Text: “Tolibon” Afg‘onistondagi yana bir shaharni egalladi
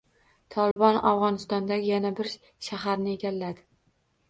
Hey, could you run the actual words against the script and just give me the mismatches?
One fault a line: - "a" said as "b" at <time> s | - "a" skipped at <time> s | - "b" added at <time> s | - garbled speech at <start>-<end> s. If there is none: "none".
none